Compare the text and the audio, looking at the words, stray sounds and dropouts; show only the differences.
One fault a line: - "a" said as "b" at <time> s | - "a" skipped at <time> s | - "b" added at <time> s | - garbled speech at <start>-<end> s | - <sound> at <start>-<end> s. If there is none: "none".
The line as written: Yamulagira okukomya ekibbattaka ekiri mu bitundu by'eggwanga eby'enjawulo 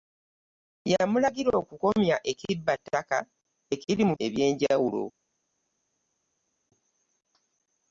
- "bitundu by'eggwanga" skipped at 4.1 s